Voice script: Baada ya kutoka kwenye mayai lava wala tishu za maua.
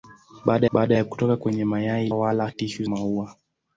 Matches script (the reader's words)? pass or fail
fail